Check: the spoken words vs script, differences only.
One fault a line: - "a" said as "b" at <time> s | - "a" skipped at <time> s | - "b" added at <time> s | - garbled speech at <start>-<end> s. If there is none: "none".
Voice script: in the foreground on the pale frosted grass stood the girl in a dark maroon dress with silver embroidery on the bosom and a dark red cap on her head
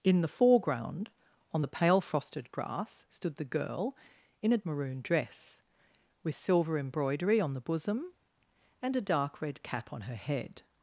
- "dark" skipped at 4.6 s